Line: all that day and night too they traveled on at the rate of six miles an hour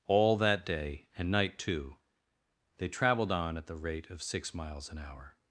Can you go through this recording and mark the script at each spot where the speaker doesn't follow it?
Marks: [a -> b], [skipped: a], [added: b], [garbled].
all that day and night too they traveled on at the rate of six miles an hour